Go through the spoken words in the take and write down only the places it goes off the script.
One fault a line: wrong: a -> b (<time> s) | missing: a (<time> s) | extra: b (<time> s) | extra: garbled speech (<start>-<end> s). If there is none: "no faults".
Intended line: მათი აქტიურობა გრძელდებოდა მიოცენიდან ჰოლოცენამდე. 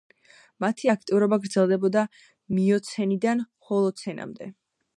no faults